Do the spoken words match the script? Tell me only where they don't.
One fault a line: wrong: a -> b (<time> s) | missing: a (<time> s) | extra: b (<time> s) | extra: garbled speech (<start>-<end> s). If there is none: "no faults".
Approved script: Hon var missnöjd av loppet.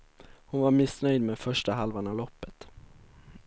extra: med första halvan (1.2 s)